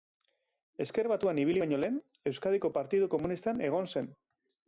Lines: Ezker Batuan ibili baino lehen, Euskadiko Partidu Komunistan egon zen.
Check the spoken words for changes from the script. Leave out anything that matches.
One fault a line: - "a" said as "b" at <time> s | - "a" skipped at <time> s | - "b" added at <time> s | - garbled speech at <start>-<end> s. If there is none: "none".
none